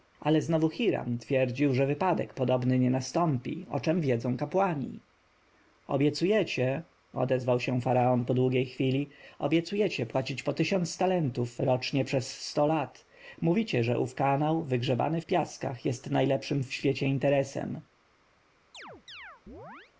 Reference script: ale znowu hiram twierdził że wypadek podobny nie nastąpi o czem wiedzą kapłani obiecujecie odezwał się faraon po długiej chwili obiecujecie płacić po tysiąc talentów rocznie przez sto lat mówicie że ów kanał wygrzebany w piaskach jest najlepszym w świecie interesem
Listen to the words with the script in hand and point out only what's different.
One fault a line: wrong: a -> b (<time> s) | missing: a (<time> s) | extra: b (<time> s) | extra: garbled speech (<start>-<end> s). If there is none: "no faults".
no faults